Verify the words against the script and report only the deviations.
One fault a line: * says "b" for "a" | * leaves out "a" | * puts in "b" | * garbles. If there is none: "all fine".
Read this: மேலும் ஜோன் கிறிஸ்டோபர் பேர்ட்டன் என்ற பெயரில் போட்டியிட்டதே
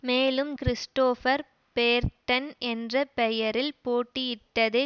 * leaves out "ஜோன்"